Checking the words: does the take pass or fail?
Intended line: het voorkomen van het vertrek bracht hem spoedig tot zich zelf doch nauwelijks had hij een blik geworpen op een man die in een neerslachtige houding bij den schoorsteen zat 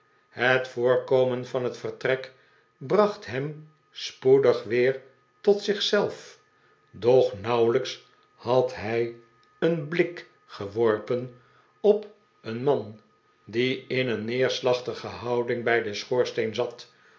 fail